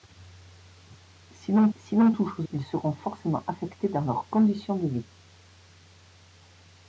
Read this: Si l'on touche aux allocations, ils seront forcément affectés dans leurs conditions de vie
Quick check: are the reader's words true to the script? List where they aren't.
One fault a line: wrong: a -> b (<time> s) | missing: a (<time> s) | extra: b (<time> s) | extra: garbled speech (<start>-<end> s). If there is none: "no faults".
extra: si l'on (1.8 s)
missing: allocations (2.5 s)